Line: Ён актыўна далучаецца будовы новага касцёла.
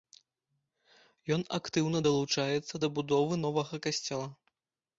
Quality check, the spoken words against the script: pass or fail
fail